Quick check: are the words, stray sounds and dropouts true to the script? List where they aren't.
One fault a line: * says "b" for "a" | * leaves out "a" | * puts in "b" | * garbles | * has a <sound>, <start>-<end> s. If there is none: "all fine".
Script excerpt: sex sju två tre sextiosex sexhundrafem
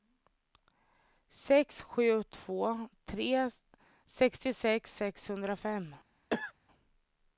* has a cough, 6.3-6.5 s